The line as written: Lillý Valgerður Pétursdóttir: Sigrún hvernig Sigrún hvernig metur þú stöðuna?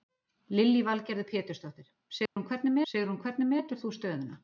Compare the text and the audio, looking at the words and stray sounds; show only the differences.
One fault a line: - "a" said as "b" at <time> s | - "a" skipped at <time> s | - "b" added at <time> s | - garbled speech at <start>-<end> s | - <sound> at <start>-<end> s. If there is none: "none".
- dropout at 2.3-2.4 s